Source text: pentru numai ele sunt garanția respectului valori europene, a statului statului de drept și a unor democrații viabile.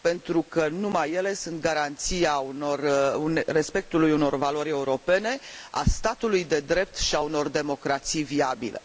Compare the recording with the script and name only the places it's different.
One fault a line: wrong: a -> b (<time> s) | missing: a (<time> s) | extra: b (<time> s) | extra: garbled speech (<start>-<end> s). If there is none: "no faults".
extra: că (0.4 s)
extra: unor (4.1 s)
missing: statului (6.4 s)